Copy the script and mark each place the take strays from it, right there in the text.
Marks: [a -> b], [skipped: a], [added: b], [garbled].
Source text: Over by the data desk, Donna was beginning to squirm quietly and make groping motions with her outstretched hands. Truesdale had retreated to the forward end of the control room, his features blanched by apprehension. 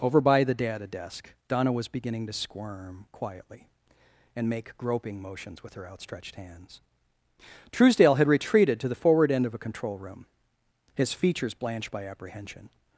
Over by the data desk, Donna was beginning to squirm quietly and make groping motions with her outstretched hands. Truesdale had retreated to the forward end of [the -> a] control room, his features blanched by apprehension.